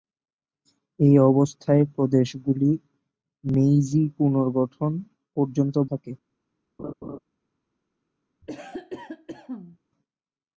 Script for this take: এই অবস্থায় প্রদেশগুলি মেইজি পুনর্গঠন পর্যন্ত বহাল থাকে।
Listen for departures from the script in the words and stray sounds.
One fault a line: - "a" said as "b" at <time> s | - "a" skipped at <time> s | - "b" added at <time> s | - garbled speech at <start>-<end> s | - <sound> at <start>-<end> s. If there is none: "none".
- "বহাল" skipped at 5.8 s
- laugh at 6.8-7.2 s
- cough at 8.4-9.8 s